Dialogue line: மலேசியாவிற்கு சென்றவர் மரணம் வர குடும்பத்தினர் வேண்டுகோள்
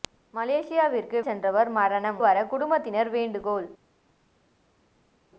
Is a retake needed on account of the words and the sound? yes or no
no